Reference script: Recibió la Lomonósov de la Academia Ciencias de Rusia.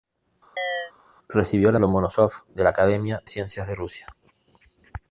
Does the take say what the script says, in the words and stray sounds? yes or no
no